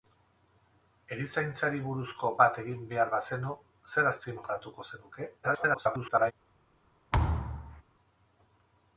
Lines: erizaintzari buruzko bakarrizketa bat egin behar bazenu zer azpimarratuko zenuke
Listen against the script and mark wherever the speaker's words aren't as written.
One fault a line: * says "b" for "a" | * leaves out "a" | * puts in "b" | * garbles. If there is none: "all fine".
* leaves out "bakarrizketa"
* garbles